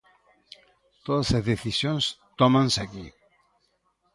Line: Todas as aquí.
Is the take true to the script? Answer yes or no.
no